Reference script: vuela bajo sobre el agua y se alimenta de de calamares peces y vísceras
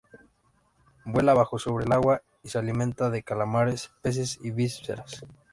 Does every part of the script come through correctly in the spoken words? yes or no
no